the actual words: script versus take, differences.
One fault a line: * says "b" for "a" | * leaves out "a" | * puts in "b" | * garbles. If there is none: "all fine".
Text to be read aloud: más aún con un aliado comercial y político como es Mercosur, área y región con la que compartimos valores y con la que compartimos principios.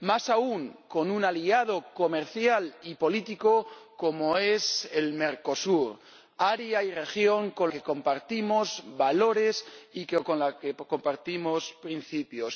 * leaves out "la"